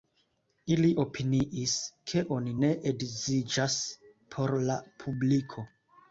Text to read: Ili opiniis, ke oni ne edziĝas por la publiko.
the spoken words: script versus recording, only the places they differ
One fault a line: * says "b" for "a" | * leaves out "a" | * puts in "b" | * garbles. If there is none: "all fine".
all fine